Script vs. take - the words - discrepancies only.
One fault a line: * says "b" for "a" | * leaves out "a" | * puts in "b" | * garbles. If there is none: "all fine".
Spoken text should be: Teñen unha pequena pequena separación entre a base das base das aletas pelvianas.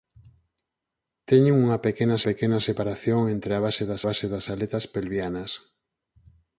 all fine